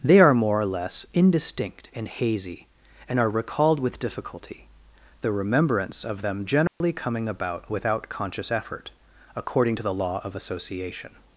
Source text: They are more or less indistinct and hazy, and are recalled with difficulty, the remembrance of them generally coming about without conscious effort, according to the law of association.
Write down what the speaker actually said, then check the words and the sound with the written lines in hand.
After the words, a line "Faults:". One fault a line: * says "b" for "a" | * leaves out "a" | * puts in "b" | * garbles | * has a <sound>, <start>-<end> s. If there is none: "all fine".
They are more or less indistinct and hazy, and are recalled with difficulty, the remembrance of them generally coming about without conscious effort, according to the law of association.
Faults:
* has a dropout, 6.7-6.8 s